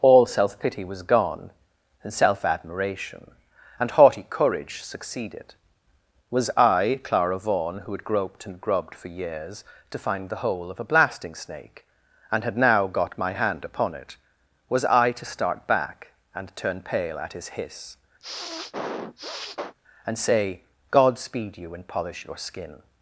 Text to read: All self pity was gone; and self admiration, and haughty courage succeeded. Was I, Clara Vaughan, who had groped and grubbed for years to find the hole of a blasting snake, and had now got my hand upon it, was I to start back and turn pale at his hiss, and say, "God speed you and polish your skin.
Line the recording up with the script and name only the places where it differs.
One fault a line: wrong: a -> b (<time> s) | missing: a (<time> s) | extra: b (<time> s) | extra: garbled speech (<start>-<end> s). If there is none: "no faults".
no faults